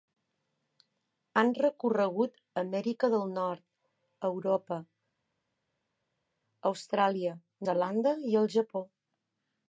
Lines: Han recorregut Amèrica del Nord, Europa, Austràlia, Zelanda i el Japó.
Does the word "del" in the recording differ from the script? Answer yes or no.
no